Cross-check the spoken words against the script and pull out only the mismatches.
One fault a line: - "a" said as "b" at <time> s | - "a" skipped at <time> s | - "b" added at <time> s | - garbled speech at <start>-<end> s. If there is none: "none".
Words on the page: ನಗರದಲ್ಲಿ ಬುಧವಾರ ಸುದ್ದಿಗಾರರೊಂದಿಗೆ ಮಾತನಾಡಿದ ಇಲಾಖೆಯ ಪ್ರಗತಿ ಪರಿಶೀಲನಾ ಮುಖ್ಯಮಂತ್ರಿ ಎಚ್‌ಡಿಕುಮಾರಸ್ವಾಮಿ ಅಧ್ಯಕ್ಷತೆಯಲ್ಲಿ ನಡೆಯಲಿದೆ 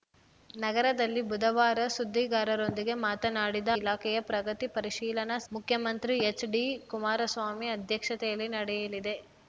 none